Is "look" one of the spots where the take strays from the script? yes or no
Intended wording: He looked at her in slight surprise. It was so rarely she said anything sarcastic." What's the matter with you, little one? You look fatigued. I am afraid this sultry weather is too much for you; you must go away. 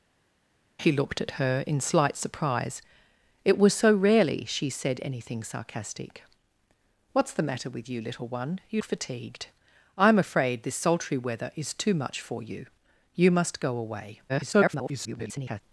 yes